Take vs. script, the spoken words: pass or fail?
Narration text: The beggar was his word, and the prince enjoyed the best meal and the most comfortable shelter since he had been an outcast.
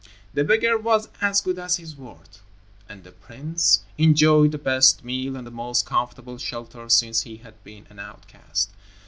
fail